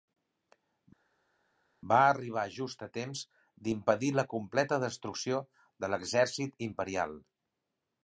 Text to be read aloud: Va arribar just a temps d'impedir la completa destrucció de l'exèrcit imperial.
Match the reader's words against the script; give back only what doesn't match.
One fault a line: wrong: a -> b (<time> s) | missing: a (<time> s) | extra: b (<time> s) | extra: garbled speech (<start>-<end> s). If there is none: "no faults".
no faults